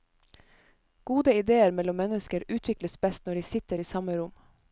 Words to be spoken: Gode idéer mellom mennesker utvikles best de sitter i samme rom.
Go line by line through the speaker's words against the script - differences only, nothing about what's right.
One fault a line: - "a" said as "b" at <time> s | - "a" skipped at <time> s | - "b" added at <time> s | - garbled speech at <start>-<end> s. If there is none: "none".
- "når" added at 3.2 s